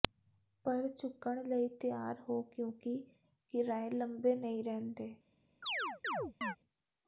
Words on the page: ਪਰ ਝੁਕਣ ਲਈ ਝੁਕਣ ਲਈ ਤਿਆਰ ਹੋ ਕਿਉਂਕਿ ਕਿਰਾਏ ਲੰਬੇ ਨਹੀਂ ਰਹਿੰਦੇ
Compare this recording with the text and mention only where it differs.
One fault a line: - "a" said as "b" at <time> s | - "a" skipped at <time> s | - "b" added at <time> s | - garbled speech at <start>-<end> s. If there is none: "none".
- "ਝੁਕਣ ਲਈ" skipped at 1.7 s